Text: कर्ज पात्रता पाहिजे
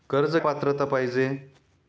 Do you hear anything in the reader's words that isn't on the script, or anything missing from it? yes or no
no